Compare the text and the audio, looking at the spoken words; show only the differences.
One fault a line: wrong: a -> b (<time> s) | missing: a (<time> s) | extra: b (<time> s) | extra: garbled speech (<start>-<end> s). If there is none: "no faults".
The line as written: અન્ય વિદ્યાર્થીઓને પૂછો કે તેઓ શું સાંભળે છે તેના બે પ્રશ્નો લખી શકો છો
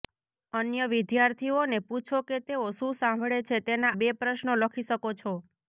no faults